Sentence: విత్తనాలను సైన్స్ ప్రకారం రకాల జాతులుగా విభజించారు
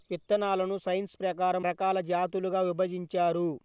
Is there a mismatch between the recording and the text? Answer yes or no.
no